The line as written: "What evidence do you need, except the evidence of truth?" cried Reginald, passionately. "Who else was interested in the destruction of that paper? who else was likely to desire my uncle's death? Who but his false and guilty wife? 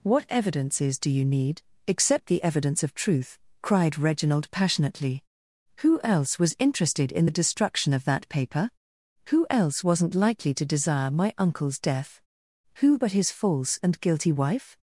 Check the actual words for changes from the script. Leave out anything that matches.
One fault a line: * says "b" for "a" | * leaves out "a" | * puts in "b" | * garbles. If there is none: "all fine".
* says "evidences" for "evidence"
* says "wasn't" for "was"